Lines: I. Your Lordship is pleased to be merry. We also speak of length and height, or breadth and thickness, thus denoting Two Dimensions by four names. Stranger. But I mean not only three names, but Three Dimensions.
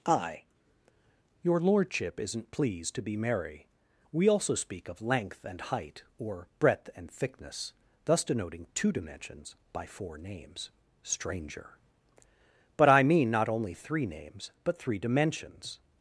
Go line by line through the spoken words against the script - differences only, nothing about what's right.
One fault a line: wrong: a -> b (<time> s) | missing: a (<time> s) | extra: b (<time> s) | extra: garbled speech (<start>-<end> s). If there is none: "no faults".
wrong: is -> isn't (2.2 s)